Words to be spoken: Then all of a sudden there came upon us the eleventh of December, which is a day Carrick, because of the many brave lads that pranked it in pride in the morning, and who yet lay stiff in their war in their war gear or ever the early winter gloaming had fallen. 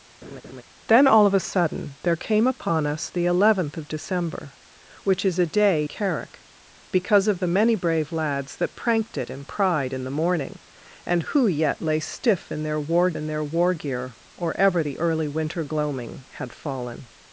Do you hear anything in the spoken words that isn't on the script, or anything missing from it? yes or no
no